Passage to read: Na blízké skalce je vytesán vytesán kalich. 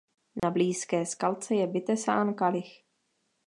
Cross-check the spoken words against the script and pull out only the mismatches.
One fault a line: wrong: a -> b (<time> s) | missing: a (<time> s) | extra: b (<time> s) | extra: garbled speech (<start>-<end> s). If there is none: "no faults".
missing: vytesán (2.3 s)